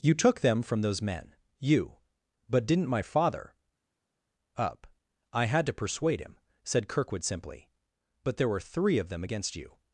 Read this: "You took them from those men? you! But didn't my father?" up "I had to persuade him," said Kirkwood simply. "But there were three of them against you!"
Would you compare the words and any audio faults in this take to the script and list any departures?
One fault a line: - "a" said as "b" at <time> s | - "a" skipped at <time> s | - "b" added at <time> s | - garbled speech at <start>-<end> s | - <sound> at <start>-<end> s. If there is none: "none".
none